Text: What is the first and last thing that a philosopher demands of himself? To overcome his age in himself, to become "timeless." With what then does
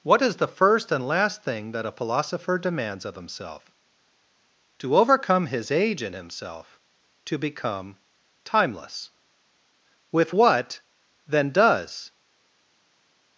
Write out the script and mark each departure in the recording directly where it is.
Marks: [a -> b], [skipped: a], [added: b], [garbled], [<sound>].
What is the first and last thing that a philosopher demands of himself? To overcome his age in himself, to become "timeless." With what then does